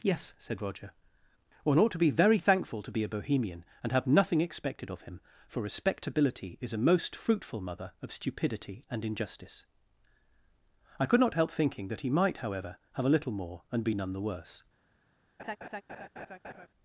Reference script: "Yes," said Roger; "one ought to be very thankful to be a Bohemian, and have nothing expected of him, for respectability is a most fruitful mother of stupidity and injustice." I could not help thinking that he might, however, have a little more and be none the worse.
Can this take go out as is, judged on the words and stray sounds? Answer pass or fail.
fail